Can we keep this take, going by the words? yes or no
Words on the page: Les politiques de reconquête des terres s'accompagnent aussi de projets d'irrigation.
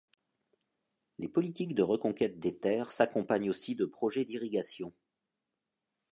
yes